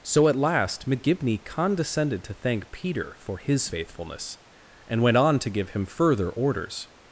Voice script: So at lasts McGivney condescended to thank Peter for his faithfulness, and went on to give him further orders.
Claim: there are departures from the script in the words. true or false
true